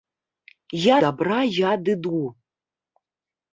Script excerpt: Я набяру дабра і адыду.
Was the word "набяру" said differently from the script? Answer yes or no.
yes